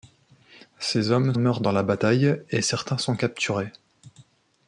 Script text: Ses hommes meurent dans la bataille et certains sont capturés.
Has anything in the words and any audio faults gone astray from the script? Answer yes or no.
no